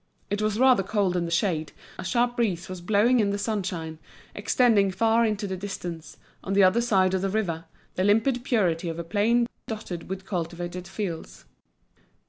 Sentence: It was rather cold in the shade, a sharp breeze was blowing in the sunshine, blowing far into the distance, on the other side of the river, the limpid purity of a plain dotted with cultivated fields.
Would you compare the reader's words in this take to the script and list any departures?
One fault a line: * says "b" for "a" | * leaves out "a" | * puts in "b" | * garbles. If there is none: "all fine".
* says "extending" for "blowing"